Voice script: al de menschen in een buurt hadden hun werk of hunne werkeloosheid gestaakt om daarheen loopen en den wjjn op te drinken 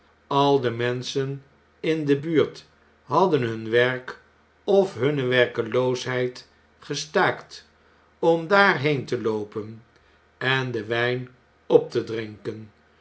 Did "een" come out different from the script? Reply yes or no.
yes